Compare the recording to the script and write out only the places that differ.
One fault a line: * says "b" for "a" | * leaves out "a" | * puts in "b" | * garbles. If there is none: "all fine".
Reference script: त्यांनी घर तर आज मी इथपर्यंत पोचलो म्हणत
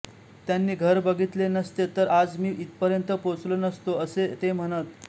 * puts in "बघितले नसते"
* puts in "नसतो असे ते"